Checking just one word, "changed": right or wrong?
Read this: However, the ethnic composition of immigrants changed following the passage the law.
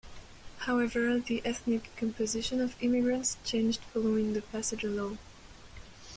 right